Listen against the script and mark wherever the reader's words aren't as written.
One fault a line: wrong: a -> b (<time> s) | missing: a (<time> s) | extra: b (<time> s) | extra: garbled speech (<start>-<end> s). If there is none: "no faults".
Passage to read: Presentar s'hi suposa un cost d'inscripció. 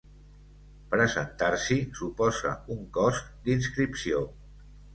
no faults